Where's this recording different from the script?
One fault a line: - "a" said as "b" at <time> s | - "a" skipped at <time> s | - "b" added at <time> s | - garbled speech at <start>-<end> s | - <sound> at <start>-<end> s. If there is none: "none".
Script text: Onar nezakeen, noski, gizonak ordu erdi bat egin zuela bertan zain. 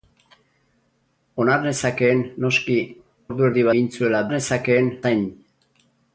- "gizonak" skipped at 2.8 s
- "bat" skipped at 3.7 s
- "bertan" said as "nezakeen" at 4.3 s